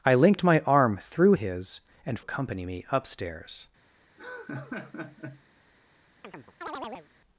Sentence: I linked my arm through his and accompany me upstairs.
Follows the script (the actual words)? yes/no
yes